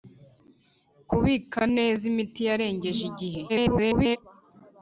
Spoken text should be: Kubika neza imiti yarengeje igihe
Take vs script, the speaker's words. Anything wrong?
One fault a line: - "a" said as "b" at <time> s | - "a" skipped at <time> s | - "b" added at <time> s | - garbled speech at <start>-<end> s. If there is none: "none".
- garbled speech at 3.5-4.2 s